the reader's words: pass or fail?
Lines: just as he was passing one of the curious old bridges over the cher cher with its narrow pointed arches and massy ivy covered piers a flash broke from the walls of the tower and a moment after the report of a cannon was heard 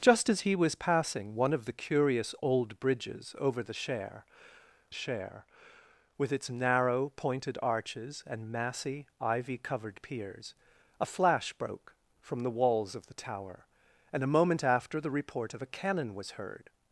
pass